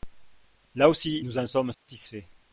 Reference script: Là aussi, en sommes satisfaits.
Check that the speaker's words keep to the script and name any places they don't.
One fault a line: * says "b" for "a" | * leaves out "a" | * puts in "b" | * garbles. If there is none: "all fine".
* puts in "nous"